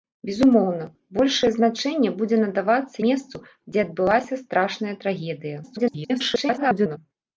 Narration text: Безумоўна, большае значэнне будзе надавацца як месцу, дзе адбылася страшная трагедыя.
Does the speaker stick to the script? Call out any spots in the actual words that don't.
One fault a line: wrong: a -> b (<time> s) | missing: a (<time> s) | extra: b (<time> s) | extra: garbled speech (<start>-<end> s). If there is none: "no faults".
missing: як (3.0 s)
extra: garbled speech (5.6-7.0 s)